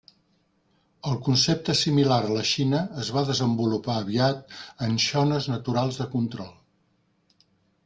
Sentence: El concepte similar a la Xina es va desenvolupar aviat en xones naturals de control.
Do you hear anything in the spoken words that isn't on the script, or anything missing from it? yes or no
no